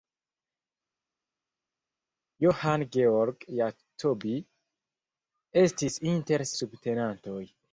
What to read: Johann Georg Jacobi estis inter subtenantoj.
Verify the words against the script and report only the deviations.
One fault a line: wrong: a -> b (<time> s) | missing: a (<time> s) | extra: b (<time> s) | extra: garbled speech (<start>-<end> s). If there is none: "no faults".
no faults